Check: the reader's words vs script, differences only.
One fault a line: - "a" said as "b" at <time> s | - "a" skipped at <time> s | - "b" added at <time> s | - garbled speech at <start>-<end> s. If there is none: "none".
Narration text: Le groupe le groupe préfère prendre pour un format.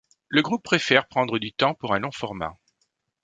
- "le groupe préfère prendre" said as "préfère prendre du temps" at 0.6 s
- "long" added at 2.0 s